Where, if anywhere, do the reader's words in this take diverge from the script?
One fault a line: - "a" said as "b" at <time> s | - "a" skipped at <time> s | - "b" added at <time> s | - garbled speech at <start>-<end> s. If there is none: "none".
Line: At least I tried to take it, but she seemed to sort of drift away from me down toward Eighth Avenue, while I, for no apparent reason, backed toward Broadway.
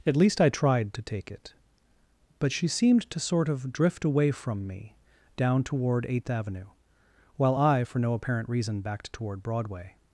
none